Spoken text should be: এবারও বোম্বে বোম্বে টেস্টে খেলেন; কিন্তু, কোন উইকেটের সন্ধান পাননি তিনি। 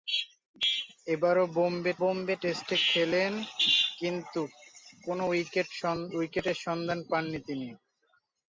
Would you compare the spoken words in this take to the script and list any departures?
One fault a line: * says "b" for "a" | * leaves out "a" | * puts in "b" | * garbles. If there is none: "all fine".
all fine